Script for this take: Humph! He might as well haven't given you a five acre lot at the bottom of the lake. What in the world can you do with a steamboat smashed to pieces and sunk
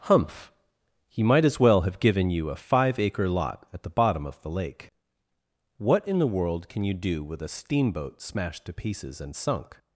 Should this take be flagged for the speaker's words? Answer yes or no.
yes